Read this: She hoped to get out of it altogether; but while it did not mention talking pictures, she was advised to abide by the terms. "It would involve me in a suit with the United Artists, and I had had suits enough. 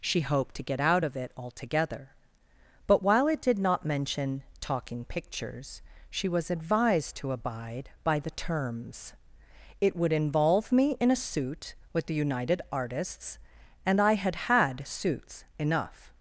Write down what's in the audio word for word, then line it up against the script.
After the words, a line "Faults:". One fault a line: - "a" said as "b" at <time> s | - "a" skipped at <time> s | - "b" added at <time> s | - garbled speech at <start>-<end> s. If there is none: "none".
She hoped to get out of it altogether; but while it did not mention talking pictures, she was advised to abide by the terms. "It would involve me in a suit with the United Artists, and I had had suits enough.
Faults:
none